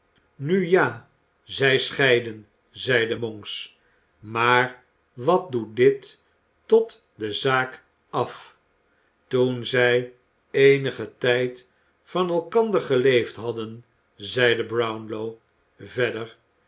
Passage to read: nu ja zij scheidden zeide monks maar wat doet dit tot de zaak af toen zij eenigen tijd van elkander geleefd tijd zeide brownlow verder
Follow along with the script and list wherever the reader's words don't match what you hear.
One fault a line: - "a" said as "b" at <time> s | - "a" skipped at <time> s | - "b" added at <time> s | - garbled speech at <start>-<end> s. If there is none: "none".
- "tijd" said as "hadden" at 13.4 s